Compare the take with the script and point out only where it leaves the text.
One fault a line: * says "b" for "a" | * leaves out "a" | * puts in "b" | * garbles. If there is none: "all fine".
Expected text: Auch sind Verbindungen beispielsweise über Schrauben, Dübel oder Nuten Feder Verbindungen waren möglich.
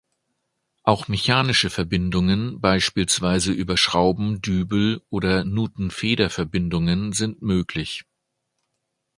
* says "mechanische" for "sind"
* says "sind" for "waren"